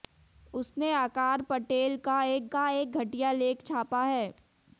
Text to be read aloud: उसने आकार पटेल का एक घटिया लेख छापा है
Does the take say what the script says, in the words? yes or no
no